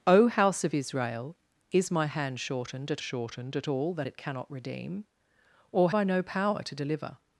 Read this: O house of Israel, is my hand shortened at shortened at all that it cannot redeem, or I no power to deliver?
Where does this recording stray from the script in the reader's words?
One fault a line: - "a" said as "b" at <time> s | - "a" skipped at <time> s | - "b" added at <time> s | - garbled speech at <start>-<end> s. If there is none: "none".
none